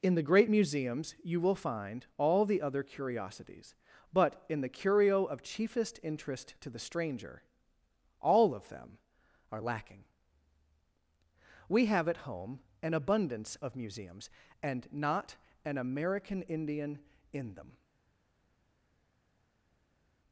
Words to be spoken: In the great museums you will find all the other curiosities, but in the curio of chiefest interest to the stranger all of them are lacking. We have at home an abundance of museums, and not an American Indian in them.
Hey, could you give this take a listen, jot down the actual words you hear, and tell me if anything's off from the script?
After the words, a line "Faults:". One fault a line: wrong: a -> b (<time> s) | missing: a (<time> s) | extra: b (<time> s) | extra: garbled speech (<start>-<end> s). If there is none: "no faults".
In the great museums you will find all the other curiosities, but in the curio of chiefest interest to the stranger all of them are lacking. We have at home an abundance of museums, and not an American Indian in them.
Faults:
no faults